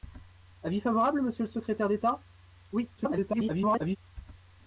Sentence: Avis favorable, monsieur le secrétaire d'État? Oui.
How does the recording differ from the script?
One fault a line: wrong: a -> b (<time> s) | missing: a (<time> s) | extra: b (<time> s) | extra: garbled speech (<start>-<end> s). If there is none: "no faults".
extra: garbled speech (3.0-4.0 s)